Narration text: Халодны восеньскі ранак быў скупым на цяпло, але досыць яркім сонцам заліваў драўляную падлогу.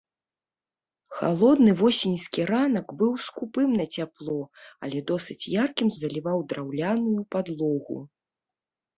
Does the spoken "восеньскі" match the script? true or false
true